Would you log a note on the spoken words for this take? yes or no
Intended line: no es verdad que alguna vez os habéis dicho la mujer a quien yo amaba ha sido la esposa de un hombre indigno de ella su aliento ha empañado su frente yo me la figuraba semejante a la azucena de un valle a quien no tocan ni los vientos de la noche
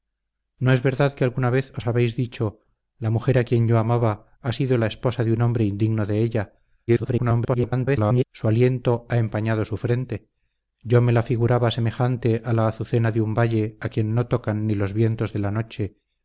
yes